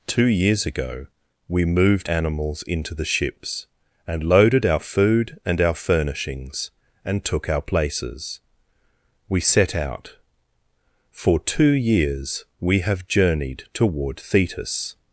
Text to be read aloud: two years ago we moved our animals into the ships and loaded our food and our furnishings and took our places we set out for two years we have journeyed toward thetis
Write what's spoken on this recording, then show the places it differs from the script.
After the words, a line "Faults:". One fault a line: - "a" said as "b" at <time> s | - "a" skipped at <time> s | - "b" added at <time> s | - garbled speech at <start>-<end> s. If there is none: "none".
two years ago we moved animals into the ships and loaded our food and our furnishings and took our places we set out for two years we have journeyed toward thetis
Faults:
- "our" skipped at 2.1 s